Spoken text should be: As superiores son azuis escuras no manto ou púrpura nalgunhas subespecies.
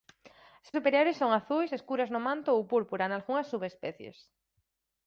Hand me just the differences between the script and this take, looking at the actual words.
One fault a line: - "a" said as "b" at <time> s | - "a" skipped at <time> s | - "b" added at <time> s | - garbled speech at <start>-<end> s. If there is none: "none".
none